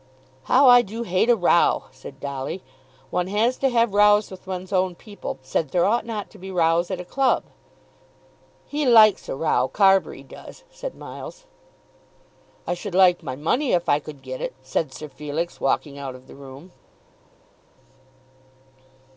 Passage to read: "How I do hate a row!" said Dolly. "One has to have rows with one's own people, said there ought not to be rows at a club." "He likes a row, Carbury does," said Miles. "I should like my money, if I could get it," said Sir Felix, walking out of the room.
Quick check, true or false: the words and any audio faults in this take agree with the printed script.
true